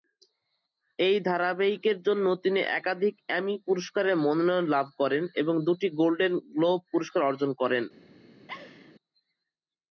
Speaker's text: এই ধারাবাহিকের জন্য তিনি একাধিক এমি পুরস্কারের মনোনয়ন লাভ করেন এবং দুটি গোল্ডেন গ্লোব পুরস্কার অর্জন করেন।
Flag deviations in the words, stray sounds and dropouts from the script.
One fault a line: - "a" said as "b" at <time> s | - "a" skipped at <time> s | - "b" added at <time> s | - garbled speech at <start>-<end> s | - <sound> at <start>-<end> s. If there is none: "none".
- laugh at 8.5-8.9 s